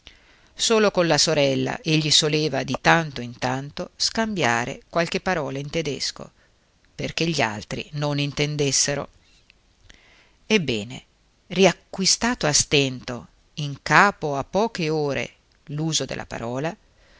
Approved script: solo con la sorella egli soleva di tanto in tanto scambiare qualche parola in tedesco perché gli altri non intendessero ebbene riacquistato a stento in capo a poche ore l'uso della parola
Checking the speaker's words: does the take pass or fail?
pass